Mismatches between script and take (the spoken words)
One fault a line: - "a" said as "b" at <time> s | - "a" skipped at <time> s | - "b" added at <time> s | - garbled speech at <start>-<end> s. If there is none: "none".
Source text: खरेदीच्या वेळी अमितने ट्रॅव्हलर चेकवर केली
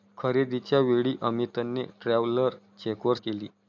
none